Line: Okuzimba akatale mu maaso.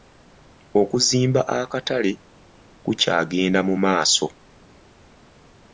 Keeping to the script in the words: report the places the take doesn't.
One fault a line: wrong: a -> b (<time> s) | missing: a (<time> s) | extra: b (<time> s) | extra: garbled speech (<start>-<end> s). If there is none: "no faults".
extra: kukyagenda (2.8 s)